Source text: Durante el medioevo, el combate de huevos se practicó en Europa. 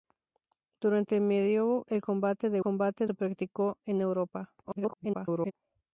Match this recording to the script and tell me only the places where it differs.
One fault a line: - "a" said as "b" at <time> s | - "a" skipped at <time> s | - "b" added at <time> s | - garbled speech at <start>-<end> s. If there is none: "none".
- "huevos" said as "combate" at 2.6 s
- garbled speech at 4.6-5.5 s